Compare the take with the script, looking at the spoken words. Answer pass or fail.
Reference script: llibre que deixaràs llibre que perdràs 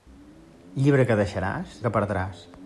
fail